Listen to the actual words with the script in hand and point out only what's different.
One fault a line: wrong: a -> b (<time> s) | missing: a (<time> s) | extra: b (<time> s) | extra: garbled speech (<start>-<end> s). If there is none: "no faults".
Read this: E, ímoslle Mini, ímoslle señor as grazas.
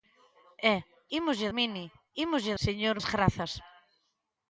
no faults